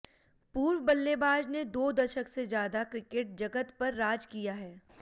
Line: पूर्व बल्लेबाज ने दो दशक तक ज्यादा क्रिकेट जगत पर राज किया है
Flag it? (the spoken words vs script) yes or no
yes